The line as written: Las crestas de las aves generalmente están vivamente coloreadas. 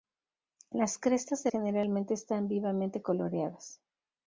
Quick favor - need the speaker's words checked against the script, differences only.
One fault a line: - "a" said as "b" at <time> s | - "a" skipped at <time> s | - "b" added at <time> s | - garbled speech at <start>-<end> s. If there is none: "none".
- "las aves" skipped at 1.5 s